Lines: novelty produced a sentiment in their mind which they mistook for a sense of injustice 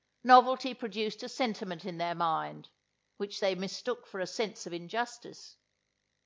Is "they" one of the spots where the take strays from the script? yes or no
no